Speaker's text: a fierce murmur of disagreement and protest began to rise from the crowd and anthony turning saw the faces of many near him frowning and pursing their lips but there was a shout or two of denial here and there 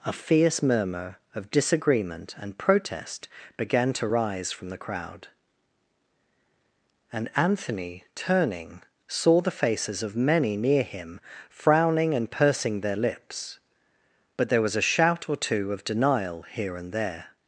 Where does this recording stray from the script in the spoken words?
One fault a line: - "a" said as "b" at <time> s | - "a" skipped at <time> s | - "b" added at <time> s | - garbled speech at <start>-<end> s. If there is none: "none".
none